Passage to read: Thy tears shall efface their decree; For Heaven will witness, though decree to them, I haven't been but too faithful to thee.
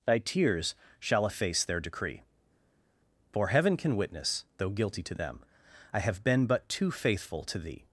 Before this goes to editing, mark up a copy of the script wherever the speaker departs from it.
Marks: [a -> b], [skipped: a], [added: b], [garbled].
Thy tears shall efface their decree; For Heaven [will -> can] witness, though [decree -> guilty] to them, I [haven't -> have] been but too faithful to thee.